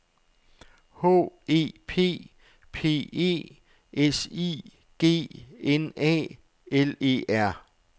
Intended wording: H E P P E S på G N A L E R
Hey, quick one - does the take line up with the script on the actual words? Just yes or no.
no